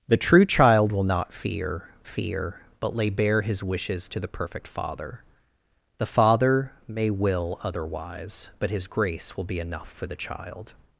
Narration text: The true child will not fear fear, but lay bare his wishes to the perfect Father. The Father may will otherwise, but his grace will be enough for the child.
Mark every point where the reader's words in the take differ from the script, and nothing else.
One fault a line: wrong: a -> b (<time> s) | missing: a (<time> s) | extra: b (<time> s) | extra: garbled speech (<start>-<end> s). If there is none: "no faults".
no faults